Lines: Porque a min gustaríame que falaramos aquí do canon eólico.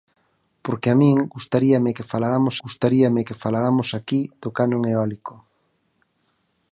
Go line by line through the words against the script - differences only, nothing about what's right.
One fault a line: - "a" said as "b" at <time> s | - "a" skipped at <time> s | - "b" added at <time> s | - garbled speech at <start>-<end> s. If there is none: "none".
- "gustaríame que falaramos" added at 2.6 s